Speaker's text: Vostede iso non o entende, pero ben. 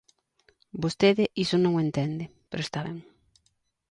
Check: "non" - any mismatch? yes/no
no